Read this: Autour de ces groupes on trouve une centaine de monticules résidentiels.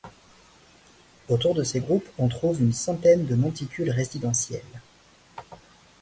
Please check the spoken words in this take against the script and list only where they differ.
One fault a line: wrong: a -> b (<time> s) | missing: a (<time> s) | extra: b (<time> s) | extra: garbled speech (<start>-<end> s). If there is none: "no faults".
no faults